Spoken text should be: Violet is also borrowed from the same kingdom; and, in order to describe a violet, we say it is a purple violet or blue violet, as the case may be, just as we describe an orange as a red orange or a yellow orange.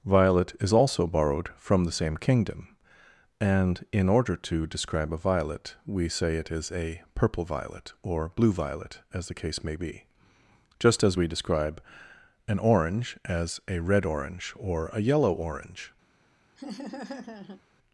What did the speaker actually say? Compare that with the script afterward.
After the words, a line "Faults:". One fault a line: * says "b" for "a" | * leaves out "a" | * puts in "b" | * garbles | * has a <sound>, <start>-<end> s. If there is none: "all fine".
Violet is also borrowed from the same kingdom; and, in order to describe a violet, we say it is a purple violet or blue violet, as the case may be, just as we describe an orange as a red orange or a yellow orange.
Faults:
* has a laugh, 16.6-17.6 s